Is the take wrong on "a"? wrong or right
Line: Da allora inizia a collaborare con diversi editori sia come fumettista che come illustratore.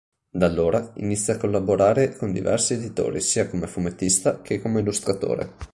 right